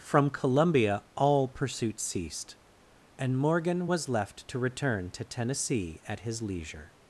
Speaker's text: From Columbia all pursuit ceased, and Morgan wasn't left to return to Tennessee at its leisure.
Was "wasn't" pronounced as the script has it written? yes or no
no